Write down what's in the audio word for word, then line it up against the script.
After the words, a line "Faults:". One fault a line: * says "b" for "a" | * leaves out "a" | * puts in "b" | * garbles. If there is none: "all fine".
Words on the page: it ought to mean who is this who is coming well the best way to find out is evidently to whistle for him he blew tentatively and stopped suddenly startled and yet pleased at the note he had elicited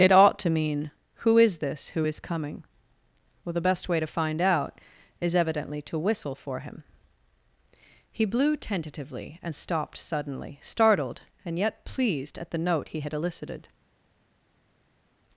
it ought to mean who is this who is coming well the best way to find out is evidently to whistle for him he blew tentatively and stopped suddenly startled and yet pleased at the note he had elicited
Faults:
all fine